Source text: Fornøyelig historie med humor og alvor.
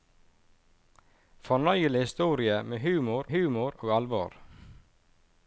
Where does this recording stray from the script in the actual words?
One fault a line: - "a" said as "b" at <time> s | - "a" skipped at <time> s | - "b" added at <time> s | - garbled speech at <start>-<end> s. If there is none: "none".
- "humor" added at 3.3 s